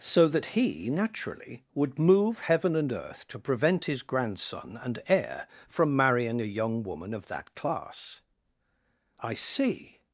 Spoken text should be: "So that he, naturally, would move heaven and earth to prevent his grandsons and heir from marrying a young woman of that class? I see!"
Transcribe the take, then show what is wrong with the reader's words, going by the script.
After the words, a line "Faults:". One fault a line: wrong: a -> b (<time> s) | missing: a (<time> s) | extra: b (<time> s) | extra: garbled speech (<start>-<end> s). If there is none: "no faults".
"So that he, naturally, would move heaven and earth to prevent his grandson and heir from marrying a young woman of that class? I see!"
Faults:
wrong: grandsons -> grandson (4.0 s)